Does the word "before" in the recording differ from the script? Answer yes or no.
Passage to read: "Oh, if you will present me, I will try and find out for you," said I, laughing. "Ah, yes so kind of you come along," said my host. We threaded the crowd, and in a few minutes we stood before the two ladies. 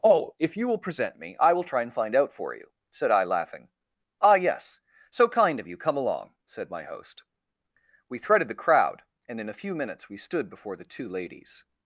no